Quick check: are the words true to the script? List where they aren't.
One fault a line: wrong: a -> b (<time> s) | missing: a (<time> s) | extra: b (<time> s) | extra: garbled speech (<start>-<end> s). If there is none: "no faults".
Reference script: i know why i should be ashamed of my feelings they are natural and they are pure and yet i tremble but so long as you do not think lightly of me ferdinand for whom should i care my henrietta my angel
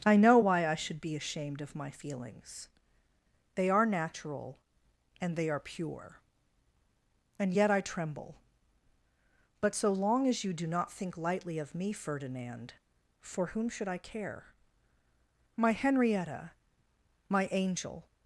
no faults